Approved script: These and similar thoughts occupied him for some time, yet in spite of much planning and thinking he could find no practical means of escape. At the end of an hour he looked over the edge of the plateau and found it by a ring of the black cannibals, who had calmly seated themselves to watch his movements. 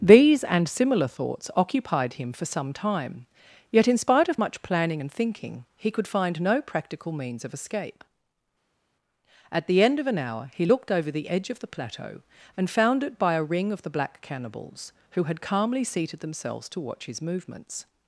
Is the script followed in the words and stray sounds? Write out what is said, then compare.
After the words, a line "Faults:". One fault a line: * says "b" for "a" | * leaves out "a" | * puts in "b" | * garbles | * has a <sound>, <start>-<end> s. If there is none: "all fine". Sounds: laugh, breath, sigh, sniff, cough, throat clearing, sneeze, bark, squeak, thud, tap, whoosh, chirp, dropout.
These and similar thoughts occupied him for some time, yet in spite of much planning and thinking he could find no practical means of escape. At the end of an hour he looked over the edge of the plateau and found it by a ring of the black cannibals, who had calmly seated themselves to watch his movements.
Faults:
all fine